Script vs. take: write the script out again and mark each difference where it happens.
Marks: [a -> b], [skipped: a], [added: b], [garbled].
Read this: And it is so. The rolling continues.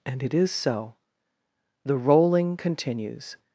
And it is so. The rolling continues.